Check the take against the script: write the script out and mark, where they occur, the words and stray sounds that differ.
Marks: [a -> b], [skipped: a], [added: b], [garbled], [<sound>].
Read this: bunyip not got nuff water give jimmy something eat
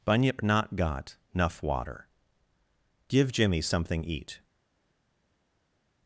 bunyip not got nuff water give jimmy something eat